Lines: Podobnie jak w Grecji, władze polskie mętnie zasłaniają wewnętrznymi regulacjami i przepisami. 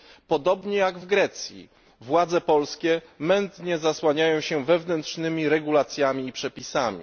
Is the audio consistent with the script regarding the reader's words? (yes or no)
no